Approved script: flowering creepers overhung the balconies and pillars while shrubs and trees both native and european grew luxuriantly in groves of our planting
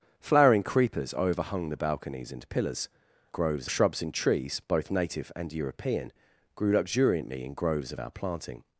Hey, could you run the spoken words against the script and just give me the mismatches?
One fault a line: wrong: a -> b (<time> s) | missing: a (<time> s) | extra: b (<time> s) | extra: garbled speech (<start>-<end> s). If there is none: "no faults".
wrong: while -> groves (3.3 s)